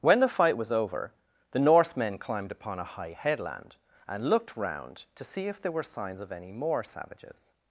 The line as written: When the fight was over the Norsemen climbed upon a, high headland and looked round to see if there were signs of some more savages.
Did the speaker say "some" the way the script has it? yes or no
no